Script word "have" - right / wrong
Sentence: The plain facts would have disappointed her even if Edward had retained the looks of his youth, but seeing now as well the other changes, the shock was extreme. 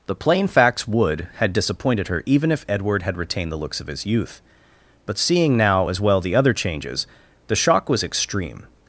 wrong